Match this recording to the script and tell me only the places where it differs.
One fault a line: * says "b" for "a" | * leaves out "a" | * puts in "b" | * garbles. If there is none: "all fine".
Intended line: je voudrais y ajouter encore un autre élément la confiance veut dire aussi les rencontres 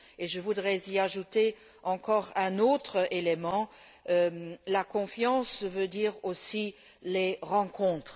all fine